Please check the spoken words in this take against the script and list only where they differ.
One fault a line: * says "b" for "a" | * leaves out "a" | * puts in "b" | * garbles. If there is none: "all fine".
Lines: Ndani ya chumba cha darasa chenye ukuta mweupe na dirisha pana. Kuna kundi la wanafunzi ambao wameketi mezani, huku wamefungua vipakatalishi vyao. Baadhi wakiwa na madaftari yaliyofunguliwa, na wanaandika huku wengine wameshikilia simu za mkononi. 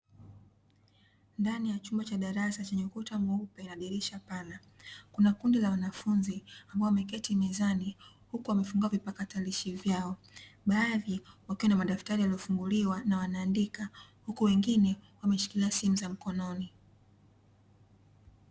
all fine